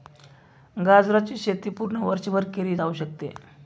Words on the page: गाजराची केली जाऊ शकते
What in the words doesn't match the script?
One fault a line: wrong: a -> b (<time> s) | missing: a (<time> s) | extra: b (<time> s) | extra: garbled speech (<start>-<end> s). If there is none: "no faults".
extra: शेती पूर्ण वर्षभर (1.4 s)